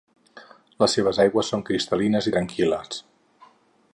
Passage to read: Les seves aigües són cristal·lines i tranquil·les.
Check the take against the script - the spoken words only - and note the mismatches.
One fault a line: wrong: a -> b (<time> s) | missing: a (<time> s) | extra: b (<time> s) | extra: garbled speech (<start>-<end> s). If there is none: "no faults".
no faults